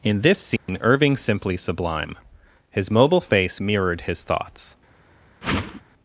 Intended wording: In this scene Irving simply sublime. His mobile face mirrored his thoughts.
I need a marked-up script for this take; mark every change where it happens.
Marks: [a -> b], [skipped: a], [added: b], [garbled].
In this scene Irving simply sublime. His mobile face mirrored his thoughts.